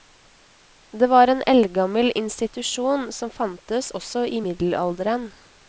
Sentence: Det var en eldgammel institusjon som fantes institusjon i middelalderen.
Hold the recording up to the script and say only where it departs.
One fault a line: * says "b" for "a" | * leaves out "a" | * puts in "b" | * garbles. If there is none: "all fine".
* says "også" for "institusjon"